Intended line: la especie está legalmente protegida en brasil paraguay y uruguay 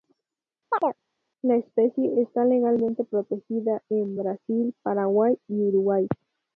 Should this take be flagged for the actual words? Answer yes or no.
no